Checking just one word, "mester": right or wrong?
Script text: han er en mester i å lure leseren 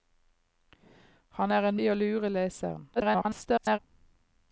wrong